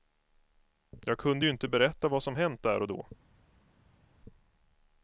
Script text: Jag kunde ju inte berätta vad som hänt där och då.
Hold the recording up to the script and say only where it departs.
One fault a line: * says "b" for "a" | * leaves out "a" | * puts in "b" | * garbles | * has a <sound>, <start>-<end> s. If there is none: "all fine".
all fine